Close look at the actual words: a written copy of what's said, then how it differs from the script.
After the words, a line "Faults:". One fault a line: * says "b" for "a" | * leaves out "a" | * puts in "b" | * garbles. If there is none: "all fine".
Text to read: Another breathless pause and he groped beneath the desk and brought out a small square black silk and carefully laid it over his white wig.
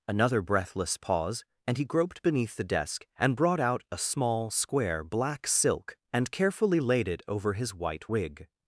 Another breathless pause and he groped beneath the desk and brought out a small square black silk and carefully laid it over his white wig.
Faults:
all fine